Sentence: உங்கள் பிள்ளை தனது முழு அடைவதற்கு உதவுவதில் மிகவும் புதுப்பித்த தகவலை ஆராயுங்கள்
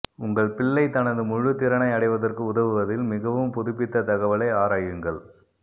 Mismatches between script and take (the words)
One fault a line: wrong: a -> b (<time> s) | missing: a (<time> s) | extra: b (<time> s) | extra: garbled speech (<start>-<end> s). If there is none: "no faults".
extra: திறனை (1.6 s)